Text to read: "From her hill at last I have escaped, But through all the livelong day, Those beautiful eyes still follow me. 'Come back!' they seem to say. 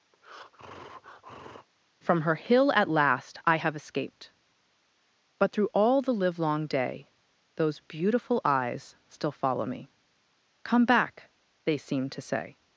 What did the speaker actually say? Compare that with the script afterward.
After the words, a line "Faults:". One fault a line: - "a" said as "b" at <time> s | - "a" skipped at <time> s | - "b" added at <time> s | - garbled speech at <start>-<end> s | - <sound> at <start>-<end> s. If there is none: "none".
"From her hill at last I have escaped, But through all the livelong day, Those beautiful eyes still follow me. 'Come back!' they seem to say.
Faults:
- breath at 0.1-1.7 s